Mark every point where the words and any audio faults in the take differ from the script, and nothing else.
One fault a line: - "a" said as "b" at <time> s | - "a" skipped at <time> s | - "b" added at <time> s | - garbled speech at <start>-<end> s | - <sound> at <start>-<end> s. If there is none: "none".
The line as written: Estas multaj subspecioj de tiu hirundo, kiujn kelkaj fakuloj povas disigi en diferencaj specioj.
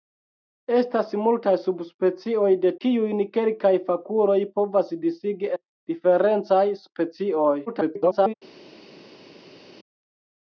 - "tiu hirundo" skipped at 2.7 s
- "en" skipped at 5.5 s
- garbled speech at 7.7-8.3 s